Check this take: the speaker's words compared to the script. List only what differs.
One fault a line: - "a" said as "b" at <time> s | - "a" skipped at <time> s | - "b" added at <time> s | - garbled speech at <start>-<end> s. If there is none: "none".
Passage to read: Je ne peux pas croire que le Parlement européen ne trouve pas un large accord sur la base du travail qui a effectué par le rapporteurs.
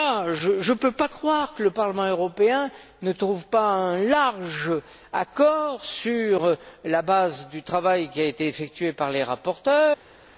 - "été" added at 8.2 s
- "le" said as "les" at 9.1 s